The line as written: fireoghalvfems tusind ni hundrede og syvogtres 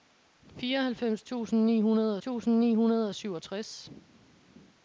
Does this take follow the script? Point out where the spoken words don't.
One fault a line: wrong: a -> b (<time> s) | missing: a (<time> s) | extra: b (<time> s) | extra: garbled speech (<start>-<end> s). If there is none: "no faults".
extra: tusind ni hundrede (2.2 s)